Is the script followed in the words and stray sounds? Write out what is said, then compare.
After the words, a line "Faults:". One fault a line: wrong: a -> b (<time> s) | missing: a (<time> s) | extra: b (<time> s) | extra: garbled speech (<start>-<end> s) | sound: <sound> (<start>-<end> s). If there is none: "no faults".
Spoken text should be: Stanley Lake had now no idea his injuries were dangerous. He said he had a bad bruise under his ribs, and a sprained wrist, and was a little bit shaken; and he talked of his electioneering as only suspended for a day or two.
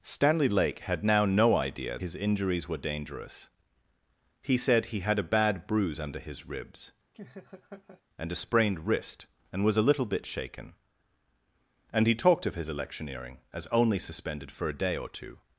Stanley Lake had now no idea his injuries were dangerous. He said he had a bad bruise under his ribs, and a sprained wrist, and was a little bit shaken; and he talked of his electioneering as only suspended for a day or two.
Faults:
sound: laugh (7.1-8.0 s)